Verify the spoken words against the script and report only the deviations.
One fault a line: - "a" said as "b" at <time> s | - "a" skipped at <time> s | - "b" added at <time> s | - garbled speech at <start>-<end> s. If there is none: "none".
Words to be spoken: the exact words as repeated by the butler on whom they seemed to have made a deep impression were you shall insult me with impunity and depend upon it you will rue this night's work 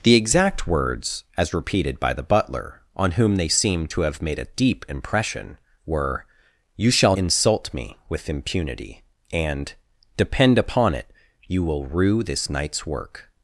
none